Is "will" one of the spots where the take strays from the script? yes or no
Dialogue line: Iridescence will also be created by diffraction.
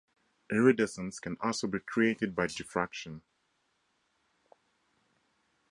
yes